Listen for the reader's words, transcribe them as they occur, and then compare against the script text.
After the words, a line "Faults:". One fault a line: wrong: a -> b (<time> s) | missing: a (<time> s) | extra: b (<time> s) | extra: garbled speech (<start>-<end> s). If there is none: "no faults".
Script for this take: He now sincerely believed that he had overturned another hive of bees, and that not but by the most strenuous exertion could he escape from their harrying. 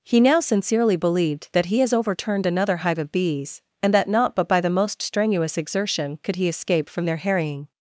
He now sincerely believed that he has overturned another hive of bees, and that not but by the most strenuous exertion could he escape from their harrying.
Faults:
wrong: had -> has (1.8 s)